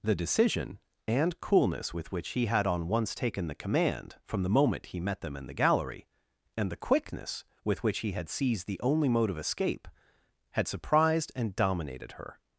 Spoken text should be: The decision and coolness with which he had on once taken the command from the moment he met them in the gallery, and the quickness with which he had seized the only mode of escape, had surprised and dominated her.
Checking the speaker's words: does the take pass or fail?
pass